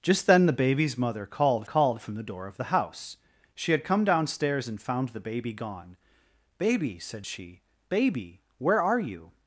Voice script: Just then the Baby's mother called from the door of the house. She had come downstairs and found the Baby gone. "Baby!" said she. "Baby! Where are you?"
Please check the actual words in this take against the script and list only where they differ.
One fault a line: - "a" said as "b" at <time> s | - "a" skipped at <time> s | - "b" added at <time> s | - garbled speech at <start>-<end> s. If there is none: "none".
- "called" added at 1.6 s